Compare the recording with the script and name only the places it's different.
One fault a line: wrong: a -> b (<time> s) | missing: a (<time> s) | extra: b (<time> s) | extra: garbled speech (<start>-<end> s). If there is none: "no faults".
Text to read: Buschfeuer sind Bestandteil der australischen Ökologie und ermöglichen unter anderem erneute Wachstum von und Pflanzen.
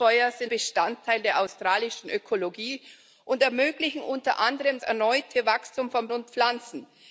no faults